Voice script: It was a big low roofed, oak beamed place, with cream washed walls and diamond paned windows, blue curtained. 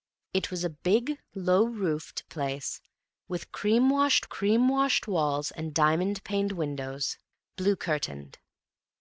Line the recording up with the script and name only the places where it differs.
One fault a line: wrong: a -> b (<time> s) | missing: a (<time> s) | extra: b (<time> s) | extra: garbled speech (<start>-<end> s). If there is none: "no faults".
wrong: oak beamed place with -> place with cream washed (2.3 s)